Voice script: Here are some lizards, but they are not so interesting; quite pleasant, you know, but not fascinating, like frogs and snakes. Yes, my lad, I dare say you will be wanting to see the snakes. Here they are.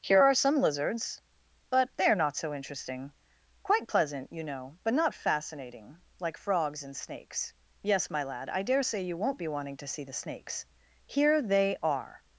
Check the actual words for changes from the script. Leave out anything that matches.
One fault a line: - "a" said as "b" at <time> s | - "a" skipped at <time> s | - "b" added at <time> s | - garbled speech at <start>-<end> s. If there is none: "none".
- "will" said as "won't" at 9.2 s